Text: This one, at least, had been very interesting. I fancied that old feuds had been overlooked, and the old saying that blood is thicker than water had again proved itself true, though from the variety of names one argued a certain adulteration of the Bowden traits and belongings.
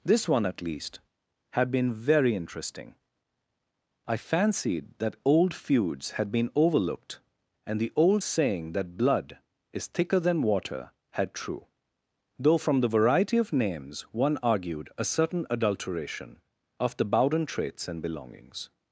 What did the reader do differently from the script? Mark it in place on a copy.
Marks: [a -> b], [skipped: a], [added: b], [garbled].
This one, at least, had been very interesting. I fancied that old feuds had been overlooked, and the old saying that blood is thicker than water had [skipped: again proved itself] true, though from the variety of names one argued a certain adulteration of the Bowden traits and belongings.